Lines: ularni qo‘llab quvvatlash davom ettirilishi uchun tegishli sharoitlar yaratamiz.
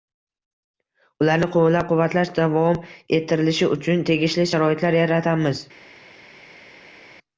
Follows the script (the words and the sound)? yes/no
yes